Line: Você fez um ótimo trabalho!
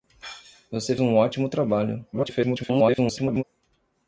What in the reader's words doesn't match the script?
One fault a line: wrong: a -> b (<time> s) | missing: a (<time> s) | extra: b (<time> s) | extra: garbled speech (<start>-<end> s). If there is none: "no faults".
missing: fez (0.9 s)
extra: garbled speech (2.1-3.4 s)